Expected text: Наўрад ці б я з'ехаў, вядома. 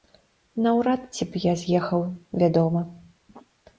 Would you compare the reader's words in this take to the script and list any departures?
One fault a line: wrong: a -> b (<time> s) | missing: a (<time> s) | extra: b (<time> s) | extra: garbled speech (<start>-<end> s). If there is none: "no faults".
no faults